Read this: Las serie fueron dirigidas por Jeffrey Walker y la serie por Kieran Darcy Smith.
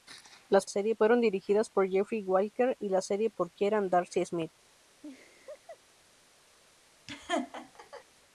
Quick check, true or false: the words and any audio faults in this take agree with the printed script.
false